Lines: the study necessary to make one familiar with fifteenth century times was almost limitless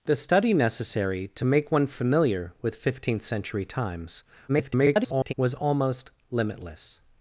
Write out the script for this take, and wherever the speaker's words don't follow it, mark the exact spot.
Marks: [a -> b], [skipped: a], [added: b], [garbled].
the study necessary to make one familiar with fifteenth century times [garbled] was almost limitless